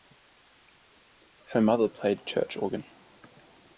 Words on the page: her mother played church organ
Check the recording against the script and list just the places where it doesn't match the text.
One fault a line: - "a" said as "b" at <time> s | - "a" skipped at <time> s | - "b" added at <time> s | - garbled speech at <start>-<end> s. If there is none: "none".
none